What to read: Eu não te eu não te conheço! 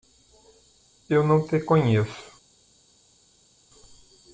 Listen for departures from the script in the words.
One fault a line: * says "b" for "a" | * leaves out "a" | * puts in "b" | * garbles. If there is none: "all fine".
* leaves out "eu não te"